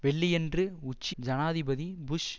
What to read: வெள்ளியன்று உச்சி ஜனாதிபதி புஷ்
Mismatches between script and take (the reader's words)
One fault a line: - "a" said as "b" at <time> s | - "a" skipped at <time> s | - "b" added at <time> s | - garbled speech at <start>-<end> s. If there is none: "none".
none